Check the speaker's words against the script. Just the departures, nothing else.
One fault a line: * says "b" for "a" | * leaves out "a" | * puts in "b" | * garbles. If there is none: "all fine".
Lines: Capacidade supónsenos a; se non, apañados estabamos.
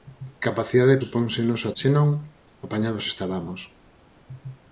all fine